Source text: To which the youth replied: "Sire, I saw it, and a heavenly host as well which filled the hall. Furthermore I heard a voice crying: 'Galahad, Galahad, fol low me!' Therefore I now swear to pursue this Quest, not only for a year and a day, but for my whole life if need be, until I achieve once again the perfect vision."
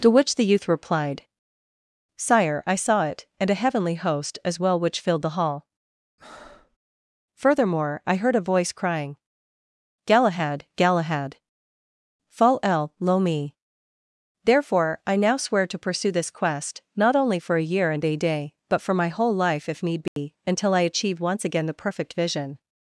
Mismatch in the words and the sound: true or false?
true